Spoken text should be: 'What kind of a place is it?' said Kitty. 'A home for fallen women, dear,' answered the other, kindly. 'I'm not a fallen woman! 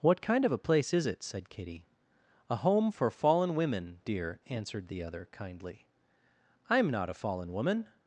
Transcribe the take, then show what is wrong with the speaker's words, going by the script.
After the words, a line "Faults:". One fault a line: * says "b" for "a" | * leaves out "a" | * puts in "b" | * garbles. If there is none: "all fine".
'What kind of a place is it?' said Kitty. 'A home for fallen women, dear,' answered the other, kindly. 'I'm not a fallen woman!
Faults:
all fine